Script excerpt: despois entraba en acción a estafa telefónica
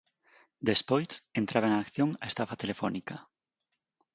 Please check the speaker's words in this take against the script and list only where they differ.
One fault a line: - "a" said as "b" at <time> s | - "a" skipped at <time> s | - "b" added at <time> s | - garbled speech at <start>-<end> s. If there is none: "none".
none